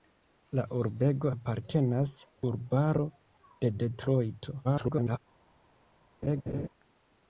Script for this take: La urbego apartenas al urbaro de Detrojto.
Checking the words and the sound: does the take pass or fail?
fail